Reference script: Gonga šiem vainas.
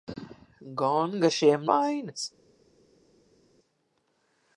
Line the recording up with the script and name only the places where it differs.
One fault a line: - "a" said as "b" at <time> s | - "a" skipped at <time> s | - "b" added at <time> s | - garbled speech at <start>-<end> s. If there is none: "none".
none